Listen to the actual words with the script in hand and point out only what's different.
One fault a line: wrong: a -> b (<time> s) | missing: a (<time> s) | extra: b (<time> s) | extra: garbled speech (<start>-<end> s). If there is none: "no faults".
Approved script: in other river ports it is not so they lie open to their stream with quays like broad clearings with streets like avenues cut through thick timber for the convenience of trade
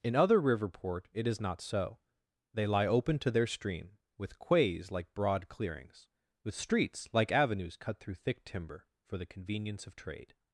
wrong: ports -> port (0.7 s)